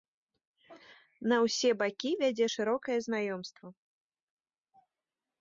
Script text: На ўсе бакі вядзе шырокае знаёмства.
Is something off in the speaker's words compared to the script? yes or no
no